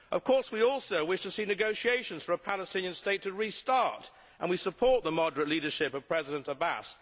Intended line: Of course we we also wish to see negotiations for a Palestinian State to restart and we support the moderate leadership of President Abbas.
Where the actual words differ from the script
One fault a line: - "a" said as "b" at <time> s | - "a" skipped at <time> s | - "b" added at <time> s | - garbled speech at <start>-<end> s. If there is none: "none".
- "we" skipped at 0.6 s